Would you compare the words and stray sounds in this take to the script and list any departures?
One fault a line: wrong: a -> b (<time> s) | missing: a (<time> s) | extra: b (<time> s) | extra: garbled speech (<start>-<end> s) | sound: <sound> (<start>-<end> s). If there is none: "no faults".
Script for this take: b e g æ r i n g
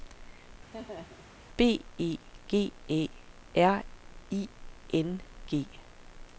sound: laugh (0.7-1.4 s)